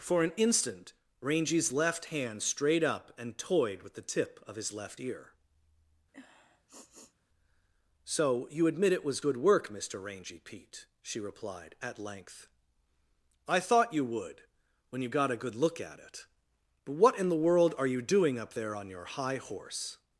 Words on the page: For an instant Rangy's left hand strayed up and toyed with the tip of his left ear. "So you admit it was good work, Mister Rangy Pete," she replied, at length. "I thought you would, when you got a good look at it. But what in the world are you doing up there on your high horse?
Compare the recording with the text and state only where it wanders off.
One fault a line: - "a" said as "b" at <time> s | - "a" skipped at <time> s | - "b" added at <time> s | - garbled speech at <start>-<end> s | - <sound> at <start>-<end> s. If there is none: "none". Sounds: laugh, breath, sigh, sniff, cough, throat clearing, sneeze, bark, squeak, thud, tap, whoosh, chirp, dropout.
- sniff at 6.1-7.1 s